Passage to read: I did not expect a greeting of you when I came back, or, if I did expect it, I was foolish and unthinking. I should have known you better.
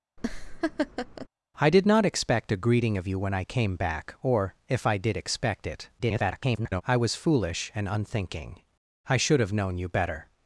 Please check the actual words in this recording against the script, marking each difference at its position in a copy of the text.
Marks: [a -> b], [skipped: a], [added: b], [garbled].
I did not expect a greeting of you when I came back, or, if I did expect it, [garbled] I was foolish and unthinking. I should have known you better.